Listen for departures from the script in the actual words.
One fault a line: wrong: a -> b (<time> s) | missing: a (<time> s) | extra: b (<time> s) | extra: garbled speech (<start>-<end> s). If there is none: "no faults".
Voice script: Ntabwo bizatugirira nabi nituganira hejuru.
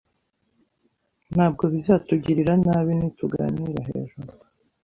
no faults